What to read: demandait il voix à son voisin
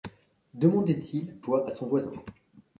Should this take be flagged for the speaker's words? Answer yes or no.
no